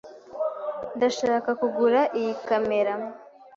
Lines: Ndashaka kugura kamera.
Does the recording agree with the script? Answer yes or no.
no